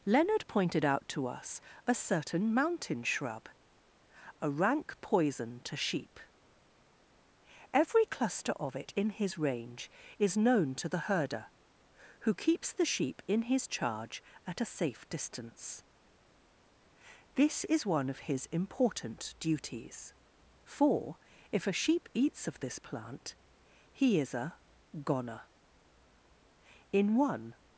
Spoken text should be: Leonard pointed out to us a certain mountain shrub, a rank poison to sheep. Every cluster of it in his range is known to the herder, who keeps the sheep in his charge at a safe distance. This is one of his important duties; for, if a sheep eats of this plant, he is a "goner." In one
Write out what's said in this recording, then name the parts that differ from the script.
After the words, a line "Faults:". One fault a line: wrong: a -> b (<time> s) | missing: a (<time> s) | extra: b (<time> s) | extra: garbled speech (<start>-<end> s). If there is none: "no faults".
Leonard pointed out to us a certain mountain shrub, a rank poison to sheep. Every cluster of it in his range is known to the herder, who keeps the sheep in his charge at a safe distance. This is one of his important duties; for, if a sheep eats of this plant, he is a "goner." In one
Faults:
no faults